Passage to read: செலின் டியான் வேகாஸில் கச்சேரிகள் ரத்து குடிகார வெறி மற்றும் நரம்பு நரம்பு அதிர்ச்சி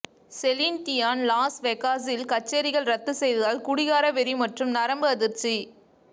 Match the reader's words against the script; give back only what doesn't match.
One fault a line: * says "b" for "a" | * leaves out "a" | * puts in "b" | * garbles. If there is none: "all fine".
* puts in "லாஸ்"
* puts in "செய்ததால்"
* leaves out "நரம்பு"